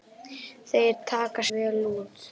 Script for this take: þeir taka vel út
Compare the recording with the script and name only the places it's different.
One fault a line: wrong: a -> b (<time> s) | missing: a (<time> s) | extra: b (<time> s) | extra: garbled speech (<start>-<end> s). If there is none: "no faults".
no faults